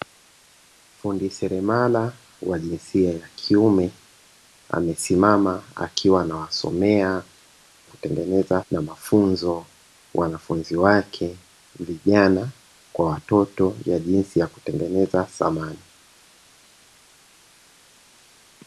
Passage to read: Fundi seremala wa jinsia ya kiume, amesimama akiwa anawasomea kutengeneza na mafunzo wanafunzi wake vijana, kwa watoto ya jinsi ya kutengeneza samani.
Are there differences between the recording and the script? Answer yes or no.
no